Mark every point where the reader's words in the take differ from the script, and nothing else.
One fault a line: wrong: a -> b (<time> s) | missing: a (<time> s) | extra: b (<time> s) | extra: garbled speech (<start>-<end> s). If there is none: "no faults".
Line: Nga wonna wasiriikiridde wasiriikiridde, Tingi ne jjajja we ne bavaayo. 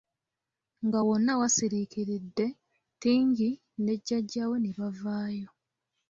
missing: wasiriikiridde (2.5 s)